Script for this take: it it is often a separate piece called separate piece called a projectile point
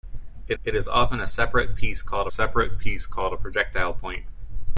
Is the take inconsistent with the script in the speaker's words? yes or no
no